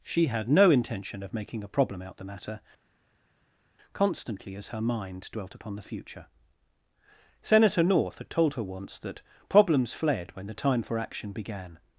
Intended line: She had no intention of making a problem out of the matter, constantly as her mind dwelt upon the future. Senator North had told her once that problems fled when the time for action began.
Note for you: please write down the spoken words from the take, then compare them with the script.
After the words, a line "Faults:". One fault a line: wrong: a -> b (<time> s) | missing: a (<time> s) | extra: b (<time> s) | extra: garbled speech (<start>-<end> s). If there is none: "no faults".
She had no intention of making a problem out the matter, constantly as her mind dwelt upon the future. Senator North had told her once that problems fled when the time for action began.
Faults:
missing: of (2.2 s)